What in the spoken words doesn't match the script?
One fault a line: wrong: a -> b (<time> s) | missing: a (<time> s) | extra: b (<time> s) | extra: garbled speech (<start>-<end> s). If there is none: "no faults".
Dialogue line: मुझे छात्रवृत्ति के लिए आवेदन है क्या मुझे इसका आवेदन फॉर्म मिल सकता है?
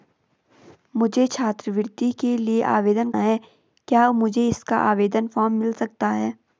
no faults